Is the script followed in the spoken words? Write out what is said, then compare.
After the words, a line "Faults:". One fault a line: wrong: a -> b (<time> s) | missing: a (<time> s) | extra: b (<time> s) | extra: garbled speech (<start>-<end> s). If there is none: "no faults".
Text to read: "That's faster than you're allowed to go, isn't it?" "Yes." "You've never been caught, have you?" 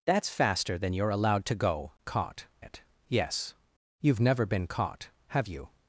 "That's faster than you're allowed to go, caught it?" "Yes." "You've never been caught, have you?"
Faults:
wrong: isn't -> caught (2.0 s)